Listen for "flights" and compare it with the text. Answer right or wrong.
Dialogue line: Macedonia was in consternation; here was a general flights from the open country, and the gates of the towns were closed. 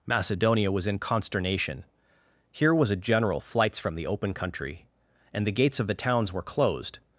right